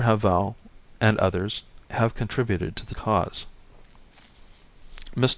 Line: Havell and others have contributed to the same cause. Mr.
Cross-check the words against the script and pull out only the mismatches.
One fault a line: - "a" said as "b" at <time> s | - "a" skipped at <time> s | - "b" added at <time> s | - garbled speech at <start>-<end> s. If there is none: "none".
- "same" skipped at 3.0 s